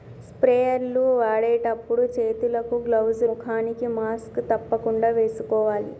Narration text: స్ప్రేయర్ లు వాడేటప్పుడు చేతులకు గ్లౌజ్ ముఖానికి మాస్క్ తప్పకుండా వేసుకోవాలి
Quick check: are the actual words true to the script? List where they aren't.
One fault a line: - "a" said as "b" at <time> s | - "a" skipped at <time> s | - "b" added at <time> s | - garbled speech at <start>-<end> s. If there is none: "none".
none